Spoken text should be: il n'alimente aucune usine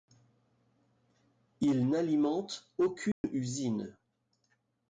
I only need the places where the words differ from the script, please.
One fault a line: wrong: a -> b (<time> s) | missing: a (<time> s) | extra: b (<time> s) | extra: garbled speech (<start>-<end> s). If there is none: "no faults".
no faults